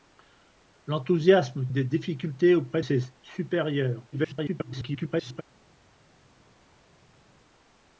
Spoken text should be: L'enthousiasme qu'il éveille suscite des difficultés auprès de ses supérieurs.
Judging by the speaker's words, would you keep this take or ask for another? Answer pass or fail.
fail